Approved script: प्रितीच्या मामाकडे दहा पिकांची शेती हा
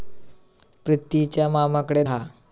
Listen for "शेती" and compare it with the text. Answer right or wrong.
wrong